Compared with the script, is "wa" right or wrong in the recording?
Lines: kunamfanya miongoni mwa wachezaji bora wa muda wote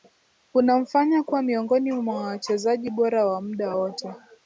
right